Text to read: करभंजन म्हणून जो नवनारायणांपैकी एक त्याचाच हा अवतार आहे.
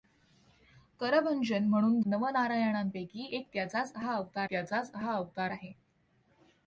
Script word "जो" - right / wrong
wrong